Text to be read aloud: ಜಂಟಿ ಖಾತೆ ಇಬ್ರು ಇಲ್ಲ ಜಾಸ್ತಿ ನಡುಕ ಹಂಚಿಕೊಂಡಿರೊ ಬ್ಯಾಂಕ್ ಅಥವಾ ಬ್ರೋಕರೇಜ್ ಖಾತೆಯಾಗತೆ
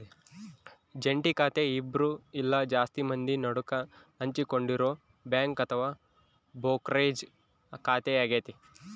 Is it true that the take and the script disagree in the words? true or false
true